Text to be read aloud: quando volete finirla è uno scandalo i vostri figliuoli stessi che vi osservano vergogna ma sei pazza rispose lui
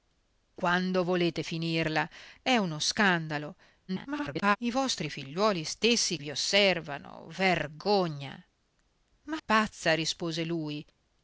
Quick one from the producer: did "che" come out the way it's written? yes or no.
no